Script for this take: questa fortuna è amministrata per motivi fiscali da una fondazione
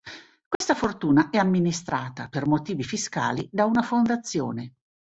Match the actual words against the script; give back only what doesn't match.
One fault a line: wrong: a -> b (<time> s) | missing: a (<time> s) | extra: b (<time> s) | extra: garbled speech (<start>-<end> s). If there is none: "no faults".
no faults